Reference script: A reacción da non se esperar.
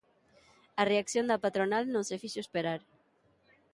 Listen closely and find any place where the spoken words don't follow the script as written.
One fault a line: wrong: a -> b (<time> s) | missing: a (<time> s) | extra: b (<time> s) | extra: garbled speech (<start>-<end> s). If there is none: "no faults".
extra: patronal (1.4 s)
extra: fixo (2.2 s)